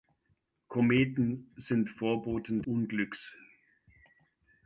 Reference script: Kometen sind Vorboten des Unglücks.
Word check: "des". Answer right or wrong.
wrong